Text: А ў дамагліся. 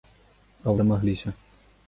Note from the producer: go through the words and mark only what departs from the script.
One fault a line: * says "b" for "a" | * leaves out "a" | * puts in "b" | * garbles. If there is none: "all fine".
all fine